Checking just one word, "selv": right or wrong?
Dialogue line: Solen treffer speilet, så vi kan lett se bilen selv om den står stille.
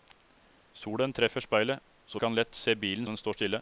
wrong